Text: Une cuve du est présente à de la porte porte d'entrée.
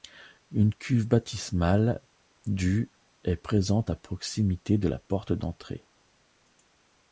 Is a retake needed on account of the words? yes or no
yes